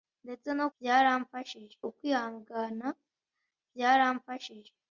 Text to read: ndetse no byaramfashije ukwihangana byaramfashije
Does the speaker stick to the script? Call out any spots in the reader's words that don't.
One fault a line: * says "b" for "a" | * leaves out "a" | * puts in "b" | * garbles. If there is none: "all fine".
all fine